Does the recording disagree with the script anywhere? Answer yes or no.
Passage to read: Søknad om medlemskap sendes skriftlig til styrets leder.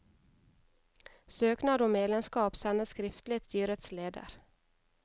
yes